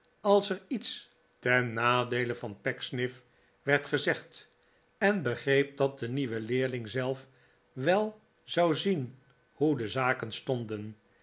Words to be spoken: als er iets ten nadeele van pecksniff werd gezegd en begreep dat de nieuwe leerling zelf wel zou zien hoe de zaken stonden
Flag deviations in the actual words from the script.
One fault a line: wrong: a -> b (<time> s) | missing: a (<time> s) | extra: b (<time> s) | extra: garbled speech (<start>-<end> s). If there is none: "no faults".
no faults